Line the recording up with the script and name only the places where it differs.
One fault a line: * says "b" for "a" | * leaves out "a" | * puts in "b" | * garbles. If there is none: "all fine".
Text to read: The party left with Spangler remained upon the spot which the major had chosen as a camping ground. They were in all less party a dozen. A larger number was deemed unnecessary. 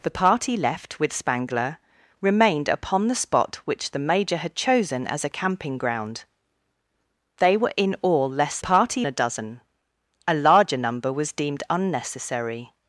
all fine